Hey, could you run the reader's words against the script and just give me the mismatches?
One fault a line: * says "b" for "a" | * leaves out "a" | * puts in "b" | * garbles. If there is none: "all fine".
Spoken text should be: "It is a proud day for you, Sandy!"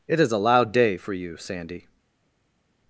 * says "loud" for "proud"